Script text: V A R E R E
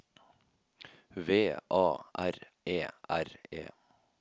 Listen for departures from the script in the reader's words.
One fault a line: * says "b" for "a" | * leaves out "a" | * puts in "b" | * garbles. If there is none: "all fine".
all fine